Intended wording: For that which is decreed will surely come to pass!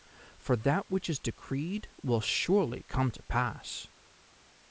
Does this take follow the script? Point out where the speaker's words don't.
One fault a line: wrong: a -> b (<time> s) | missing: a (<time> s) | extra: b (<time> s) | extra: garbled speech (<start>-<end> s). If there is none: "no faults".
no faults